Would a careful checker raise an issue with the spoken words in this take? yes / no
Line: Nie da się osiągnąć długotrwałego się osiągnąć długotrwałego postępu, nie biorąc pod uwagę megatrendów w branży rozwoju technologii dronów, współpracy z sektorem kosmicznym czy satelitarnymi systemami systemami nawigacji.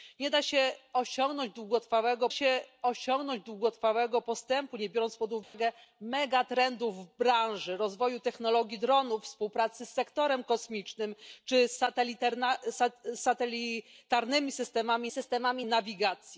no